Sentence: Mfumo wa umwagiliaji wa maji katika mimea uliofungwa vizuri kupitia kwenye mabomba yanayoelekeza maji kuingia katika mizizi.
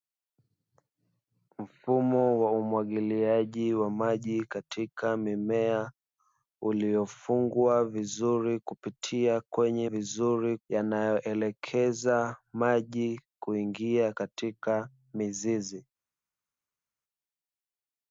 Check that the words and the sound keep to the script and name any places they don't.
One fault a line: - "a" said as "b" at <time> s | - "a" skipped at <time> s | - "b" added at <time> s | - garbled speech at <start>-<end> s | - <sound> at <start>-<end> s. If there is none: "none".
- "mabomba" said as "vizuri" at 9.9 s